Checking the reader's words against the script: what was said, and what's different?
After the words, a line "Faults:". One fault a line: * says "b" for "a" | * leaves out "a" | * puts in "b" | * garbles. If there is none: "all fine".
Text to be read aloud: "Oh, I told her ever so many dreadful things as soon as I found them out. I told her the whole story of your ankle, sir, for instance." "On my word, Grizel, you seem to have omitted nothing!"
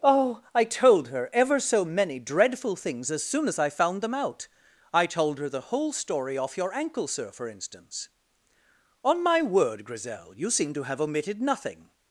"Oh, I told her ever so many dreadful things as soon as I found them out. I told her the whole story off your ankle, sir, for instance." "On my word, Grizel, you seem to have omitted nothing!"
Faults:
* says "off" for "of"